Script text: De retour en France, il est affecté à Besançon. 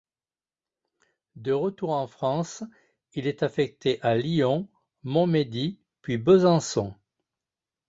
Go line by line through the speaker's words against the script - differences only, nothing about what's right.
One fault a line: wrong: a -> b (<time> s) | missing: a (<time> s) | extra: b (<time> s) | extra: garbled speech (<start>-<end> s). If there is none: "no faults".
extra: Lyon Montmédy puis (4.2 s)